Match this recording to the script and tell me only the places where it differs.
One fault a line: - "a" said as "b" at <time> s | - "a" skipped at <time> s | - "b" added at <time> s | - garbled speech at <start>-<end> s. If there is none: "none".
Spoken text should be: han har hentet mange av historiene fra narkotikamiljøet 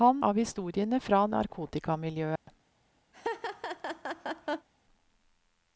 - "har hentet mange" skipped at 0.2 s